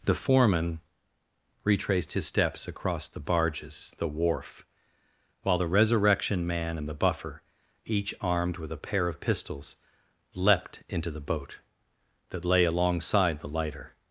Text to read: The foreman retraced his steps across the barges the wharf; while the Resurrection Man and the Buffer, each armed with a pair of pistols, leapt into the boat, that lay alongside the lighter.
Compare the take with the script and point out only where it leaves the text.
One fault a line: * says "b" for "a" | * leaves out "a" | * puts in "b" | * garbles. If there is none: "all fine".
all fine